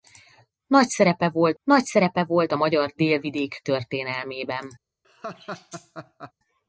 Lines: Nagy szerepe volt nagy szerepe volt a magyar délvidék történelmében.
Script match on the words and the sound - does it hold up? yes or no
no